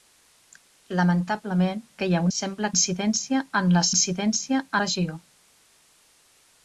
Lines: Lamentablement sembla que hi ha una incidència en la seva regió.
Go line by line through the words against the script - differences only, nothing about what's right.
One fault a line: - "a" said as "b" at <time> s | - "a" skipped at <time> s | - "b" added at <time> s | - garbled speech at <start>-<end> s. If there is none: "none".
- "sembla" skipped at 1.8 s
- "una" said as "sembla" at 2.4 s
- "seva" said as "incidència" at 3.9 s